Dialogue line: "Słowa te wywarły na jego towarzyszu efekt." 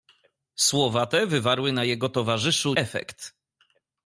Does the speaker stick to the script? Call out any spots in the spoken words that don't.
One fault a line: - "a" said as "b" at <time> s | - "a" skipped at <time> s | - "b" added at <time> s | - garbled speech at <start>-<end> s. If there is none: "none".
none